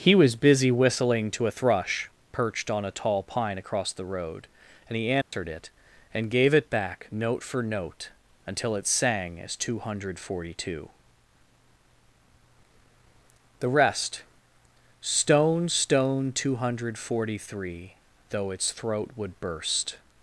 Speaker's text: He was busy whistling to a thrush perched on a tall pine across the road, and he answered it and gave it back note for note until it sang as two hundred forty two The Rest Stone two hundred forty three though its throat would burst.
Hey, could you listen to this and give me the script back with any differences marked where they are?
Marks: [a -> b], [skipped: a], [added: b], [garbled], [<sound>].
He was busy whistling to a thrush perched on a tall pine across the road, and he answered [dropout] it and gave it back note for note until it sang as two hundred forty two The Rest Stone [added: Stone] two hundred forty three though its throat would burst.